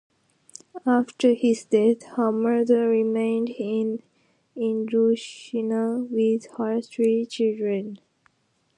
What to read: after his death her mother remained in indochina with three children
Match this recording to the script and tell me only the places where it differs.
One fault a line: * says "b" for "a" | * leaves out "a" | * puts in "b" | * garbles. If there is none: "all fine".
* puts in "her"